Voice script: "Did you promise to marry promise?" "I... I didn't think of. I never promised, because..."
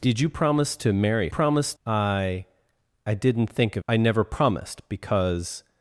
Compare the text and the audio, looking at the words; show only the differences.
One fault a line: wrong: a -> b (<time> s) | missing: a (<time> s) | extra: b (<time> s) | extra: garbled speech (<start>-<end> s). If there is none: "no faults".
no faults